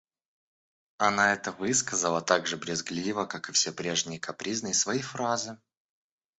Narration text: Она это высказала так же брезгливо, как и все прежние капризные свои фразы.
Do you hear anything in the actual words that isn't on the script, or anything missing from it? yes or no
no